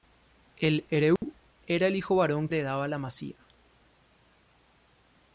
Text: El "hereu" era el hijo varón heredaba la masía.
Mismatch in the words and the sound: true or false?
true